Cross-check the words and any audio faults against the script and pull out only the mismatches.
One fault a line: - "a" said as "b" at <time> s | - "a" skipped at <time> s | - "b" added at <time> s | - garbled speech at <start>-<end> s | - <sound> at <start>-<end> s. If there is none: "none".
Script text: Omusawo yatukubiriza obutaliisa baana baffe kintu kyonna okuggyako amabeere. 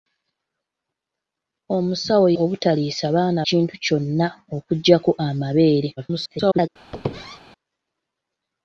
- "yatukubiriza" skipped at 2.3 s
- "baffe" skipped at 3.4 s
- garbled speech at 6.0-6.7 s
- squeak at 6.9-7.4 s